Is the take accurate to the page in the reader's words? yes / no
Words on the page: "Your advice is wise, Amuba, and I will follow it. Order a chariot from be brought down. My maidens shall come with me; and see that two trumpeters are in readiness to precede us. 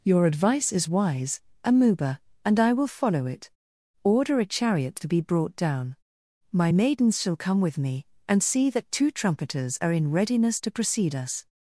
no